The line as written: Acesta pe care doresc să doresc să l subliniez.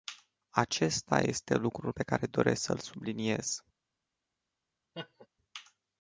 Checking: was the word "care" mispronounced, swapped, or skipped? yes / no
no